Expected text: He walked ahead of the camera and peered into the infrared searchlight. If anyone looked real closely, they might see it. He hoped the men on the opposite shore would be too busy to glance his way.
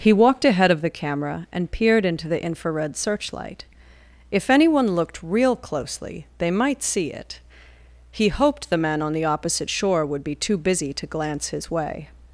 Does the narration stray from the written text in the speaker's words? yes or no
no